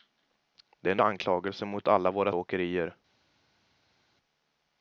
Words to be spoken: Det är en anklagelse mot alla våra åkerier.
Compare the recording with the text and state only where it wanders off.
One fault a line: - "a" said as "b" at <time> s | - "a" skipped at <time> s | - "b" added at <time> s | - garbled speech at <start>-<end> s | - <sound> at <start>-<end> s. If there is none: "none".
none